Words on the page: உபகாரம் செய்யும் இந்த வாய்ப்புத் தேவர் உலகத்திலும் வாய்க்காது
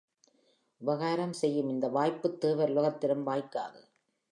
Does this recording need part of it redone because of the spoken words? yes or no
no